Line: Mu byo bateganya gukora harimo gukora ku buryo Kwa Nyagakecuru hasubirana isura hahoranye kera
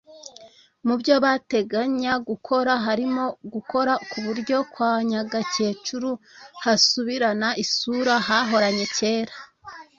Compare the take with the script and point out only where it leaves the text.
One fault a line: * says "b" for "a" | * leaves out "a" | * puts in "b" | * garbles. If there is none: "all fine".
all fine